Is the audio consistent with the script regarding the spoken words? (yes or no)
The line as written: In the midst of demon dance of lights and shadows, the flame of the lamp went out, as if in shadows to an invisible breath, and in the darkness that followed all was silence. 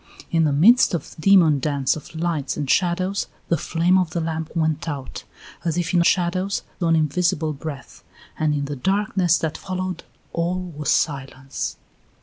yes